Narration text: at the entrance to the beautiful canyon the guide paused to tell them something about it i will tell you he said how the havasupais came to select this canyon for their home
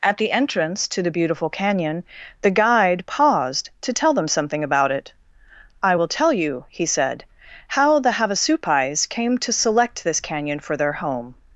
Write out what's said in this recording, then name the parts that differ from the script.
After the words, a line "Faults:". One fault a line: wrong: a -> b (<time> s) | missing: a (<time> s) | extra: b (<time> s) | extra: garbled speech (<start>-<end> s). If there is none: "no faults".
at the entrance to the beautiful canyon the guide paused to tell them something about it i will tell you he said how the havasupais came to select this canyon for their home
Faults:
no faults